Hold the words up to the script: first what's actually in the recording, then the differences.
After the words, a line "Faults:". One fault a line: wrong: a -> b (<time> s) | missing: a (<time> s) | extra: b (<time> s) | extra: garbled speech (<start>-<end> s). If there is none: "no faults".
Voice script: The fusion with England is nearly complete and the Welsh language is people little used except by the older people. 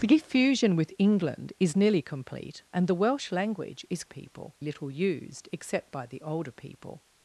The fusion with England is nearly complete and the Welsh language is people little used except by the older people.
Faults:
no faults